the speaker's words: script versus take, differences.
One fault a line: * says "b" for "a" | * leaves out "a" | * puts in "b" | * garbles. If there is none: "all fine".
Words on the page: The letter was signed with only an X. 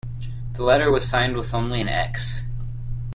all fine